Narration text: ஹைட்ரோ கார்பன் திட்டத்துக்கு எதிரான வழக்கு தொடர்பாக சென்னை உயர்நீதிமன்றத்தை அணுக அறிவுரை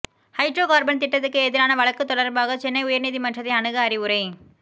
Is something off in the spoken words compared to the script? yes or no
no